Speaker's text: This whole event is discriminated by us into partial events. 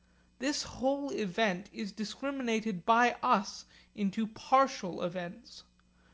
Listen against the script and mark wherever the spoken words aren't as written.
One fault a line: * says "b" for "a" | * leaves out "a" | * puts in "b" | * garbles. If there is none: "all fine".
all fine